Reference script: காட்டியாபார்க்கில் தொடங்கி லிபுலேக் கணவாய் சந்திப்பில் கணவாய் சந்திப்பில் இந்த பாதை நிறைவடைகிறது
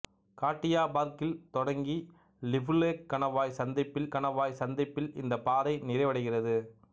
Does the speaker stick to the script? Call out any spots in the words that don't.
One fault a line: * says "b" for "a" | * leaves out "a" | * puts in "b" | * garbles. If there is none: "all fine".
all fine